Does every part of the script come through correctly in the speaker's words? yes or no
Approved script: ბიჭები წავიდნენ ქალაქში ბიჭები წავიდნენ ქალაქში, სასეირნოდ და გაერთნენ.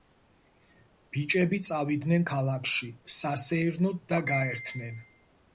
no